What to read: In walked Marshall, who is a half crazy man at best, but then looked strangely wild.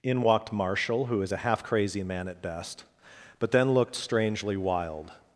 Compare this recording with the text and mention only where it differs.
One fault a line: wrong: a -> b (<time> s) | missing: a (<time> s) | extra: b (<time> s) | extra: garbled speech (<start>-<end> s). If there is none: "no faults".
no faults